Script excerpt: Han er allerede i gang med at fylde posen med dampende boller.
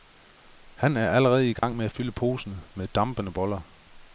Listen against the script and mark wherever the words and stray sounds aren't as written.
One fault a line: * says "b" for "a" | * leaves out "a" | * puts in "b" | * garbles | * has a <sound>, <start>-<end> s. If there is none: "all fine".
* has a dropout, 1.6-1.6 s